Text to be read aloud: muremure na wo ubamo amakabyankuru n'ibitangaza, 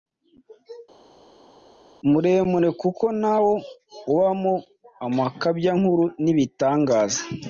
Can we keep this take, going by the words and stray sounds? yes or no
no